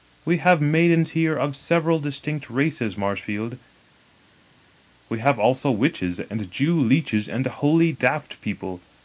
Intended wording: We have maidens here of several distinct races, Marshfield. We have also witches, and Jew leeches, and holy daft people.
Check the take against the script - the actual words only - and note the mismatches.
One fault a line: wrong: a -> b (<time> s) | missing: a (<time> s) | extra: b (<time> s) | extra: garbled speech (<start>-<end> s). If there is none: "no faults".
no faults